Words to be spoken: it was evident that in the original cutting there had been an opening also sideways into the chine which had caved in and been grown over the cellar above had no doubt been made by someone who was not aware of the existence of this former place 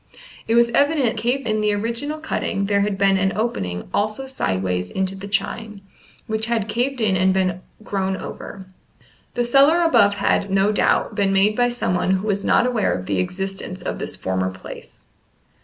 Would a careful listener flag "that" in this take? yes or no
yes